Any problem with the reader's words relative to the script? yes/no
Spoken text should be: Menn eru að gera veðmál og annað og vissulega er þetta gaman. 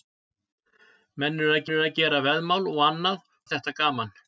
yes